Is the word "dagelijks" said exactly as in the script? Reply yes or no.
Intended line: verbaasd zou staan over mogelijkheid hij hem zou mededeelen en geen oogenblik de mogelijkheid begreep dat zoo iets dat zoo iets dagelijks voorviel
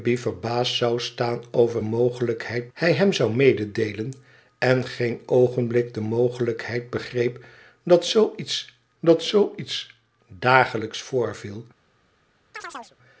yes